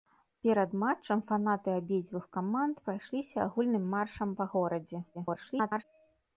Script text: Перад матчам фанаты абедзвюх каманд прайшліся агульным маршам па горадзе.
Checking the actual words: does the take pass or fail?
fail